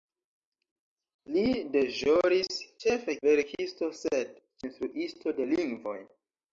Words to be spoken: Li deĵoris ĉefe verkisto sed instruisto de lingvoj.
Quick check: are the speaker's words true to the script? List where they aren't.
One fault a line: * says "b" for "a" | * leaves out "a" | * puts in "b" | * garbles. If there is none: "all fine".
all fine